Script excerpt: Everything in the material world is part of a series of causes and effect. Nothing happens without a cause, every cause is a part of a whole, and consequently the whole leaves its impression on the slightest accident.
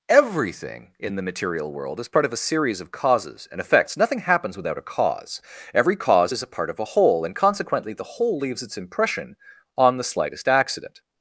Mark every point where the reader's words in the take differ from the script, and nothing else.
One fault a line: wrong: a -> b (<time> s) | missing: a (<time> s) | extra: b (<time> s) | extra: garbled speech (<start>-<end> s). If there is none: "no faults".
wrong: effect -> effects (3.6 s)